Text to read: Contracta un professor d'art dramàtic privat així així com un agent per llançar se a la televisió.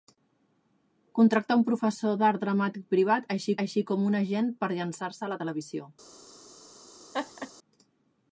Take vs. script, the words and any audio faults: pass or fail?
fail